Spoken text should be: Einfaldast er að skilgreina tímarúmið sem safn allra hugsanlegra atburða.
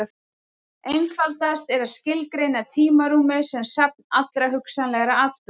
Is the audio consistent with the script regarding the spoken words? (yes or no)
yes